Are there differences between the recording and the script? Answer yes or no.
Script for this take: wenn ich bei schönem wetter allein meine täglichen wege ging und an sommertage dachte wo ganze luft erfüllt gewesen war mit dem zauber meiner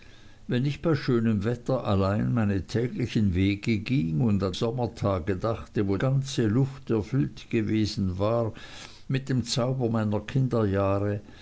no